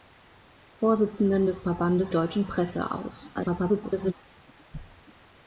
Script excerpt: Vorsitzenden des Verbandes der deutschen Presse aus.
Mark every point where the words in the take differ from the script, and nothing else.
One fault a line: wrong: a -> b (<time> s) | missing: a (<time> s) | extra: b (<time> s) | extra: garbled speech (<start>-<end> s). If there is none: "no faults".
missing: der (2.1 s)
extra: garbled speech (3.3-4.1 s)